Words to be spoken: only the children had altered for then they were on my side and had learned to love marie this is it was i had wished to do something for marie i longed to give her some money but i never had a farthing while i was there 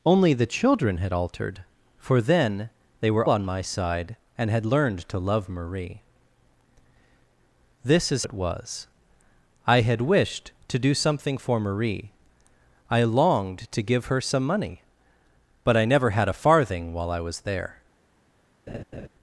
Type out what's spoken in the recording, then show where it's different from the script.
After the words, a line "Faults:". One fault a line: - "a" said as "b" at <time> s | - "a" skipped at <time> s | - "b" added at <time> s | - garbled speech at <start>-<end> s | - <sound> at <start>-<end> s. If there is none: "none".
only the children had altered for then they were on my side and had learned to love marie this is it was i had wished to do something for marie i longed to give her some money but i never had a farthing while i was there
Faults:
- laugh at 18.7-19.1 s